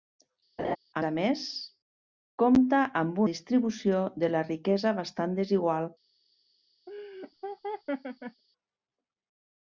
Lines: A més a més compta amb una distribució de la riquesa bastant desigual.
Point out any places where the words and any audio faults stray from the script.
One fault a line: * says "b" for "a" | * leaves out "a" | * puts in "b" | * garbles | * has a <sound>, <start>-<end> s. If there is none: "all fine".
* has a laugh, 0.6-0.8 s
* leaves out "més"
* leaves out "una"
* has a laugh, 6.9-8.4 s